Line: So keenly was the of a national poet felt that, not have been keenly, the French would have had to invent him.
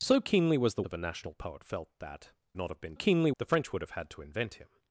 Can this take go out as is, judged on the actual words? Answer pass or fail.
pass